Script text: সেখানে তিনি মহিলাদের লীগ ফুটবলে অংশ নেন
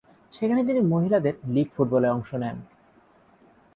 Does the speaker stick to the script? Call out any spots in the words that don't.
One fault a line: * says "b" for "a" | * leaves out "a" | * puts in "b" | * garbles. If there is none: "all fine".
all fine